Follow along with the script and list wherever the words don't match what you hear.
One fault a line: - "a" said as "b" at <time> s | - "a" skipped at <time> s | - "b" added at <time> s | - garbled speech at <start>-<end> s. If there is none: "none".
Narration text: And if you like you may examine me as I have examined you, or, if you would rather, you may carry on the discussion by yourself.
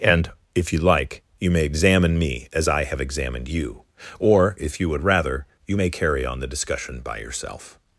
none